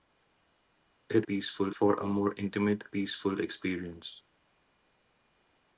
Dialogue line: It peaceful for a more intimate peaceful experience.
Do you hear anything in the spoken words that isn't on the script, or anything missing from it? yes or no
no